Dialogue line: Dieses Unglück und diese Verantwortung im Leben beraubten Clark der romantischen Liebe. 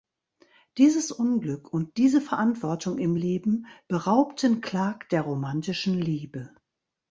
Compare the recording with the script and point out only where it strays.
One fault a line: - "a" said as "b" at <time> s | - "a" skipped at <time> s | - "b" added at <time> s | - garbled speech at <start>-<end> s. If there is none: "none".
none